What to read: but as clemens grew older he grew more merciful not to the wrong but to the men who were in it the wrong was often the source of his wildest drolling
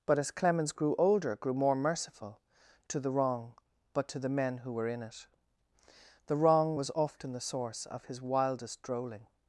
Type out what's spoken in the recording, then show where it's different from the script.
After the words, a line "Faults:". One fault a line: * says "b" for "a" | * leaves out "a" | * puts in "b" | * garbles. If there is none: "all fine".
but as clemens grew older grew more merciful to the wrong but to the men who were in it the wrong was often the source of his wildest drolling
Faults:
* leaves out "he"
* leaves out "not"